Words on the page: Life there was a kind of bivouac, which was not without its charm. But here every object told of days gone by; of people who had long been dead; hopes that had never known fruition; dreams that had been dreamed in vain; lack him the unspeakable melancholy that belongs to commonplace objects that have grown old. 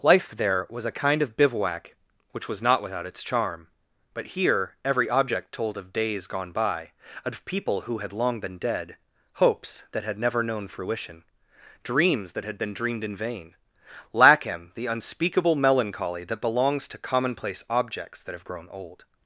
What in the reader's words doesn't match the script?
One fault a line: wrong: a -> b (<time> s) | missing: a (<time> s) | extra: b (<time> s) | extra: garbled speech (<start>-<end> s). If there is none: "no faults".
no faults